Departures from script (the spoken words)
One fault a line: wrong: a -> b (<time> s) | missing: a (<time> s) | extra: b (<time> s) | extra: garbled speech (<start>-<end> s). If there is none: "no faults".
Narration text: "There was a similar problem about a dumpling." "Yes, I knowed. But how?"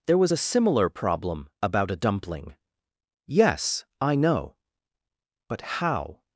wrong: knowed -> know (4.1 s)